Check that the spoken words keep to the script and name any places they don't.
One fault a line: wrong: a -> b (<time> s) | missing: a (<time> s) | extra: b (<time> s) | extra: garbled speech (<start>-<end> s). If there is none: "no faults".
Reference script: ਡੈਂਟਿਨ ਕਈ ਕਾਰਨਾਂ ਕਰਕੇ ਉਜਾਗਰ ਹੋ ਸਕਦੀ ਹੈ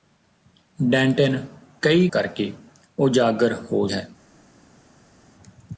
missing: ਕਾਰਨਾਂ (2.1 s)
missing: ਸਕਦੀ (3.9 s)